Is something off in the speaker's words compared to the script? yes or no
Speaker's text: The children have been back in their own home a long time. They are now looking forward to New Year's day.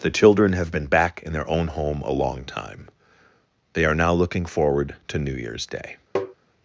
no